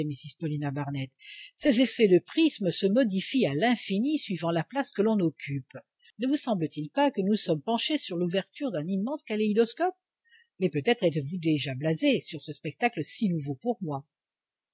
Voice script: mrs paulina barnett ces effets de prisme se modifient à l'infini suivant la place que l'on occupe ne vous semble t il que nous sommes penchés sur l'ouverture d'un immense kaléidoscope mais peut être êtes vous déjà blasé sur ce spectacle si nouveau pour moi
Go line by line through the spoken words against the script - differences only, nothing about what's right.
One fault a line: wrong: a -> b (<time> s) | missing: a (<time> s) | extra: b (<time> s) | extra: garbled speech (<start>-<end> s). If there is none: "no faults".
extra: pas (6.9 s)